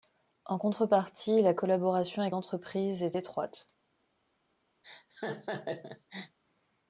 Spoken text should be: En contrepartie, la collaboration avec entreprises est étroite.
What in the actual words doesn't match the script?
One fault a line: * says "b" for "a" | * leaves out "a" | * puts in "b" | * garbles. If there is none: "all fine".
all fine